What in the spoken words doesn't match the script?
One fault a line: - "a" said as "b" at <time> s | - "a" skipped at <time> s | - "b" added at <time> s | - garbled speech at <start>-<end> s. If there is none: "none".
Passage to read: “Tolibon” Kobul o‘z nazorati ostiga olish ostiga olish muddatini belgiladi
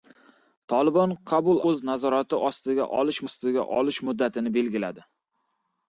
none